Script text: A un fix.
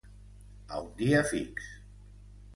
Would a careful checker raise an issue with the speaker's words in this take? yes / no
yes